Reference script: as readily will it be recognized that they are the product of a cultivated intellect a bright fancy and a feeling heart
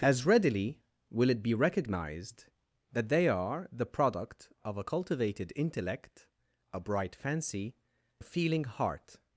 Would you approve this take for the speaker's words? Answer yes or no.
no